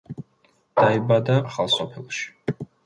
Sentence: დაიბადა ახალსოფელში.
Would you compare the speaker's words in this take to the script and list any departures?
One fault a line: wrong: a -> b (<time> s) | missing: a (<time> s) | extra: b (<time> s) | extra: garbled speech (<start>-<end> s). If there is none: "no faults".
no faults